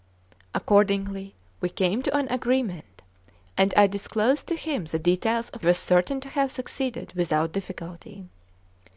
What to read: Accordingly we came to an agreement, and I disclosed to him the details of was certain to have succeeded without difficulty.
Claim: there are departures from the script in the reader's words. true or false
false